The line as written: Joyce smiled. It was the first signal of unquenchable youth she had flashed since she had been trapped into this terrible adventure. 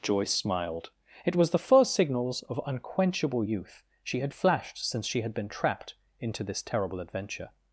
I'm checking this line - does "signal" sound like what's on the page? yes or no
no